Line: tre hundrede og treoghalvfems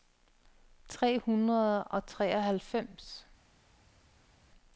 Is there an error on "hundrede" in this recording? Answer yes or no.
no